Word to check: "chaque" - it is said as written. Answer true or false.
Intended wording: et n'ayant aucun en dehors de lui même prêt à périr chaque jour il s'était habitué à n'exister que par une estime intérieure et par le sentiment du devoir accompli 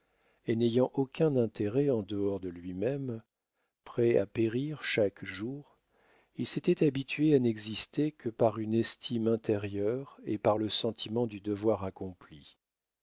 true